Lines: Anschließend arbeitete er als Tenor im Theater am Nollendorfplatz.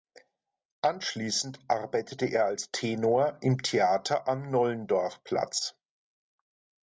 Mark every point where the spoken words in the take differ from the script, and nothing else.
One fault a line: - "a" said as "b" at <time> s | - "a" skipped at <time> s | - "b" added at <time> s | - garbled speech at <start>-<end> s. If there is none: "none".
none